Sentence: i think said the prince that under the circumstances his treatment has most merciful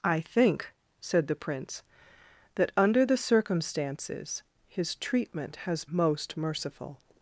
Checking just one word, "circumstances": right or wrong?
right